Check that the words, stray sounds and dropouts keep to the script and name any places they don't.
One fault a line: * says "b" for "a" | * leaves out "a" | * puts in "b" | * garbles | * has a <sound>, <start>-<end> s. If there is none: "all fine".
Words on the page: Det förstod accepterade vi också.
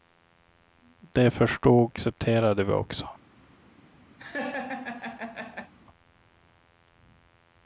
* has a laugh, 4.2-5.7 s